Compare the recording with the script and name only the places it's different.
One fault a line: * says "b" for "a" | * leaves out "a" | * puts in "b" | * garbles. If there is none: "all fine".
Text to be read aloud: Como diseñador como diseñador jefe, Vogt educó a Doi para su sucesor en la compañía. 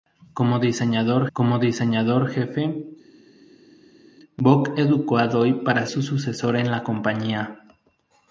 all fine